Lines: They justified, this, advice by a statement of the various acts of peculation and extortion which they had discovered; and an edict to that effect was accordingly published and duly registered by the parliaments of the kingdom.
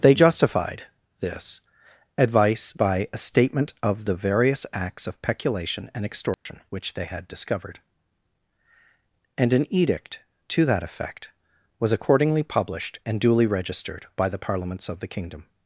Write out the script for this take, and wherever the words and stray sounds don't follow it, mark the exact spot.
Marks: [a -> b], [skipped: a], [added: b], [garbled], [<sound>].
They justified, this, advice by a statement of the various acts of peculation and extortion [dropout] which they had discovered; and an edict to that effect was accordingly published and duly registered by the parliaments of the kingdom.